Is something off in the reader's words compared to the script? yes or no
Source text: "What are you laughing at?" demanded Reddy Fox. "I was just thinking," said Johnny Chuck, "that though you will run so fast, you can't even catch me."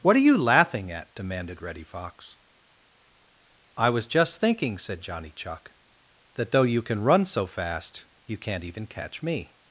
yes